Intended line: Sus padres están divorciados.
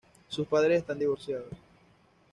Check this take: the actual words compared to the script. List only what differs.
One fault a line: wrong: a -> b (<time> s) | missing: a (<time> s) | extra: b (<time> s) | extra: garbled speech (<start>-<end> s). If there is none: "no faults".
no faults